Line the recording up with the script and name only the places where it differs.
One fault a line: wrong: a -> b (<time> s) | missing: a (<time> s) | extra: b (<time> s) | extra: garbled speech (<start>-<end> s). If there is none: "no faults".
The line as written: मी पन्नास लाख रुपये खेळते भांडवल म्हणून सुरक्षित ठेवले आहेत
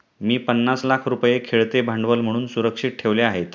no faults